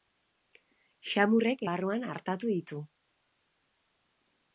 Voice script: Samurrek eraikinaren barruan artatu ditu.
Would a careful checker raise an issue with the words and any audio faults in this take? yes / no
yes